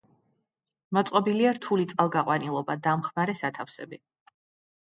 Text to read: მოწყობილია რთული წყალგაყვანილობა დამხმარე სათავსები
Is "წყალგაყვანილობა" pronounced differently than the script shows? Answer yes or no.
no